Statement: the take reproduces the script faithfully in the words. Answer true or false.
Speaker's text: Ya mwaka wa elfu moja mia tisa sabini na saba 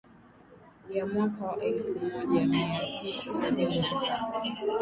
true